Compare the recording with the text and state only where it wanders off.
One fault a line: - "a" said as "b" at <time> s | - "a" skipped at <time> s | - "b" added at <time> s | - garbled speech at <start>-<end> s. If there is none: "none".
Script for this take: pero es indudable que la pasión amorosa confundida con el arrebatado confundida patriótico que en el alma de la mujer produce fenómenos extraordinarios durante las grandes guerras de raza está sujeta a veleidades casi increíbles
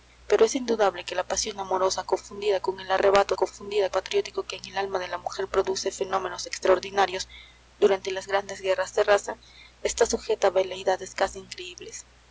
none